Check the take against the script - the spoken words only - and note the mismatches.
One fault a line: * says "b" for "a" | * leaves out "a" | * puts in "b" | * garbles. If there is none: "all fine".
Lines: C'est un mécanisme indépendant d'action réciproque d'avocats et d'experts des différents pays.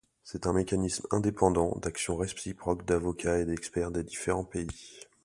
all fine